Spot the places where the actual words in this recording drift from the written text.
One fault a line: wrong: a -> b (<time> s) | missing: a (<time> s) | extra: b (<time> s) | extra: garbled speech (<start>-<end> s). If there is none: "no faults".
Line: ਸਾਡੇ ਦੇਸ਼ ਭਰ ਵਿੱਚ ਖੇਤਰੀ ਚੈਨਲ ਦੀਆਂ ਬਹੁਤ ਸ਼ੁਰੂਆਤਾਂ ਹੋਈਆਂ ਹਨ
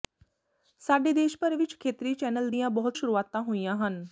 no faults